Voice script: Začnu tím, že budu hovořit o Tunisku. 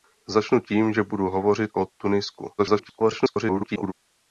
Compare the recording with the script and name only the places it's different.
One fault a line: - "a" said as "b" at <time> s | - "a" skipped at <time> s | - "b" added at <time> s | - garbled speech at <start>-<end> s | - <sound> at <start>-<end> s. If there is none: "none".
- garbled speech at 2.6-3.9 s